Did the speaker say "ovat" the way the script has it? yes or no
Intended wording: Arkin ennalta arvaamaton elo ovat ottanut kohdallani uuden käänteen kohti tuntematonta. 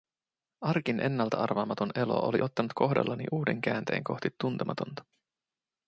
no